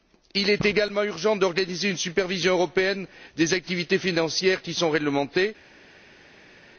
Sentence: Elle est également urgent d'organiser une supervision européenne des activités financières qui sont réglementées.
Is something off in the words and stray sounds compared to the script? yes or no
yes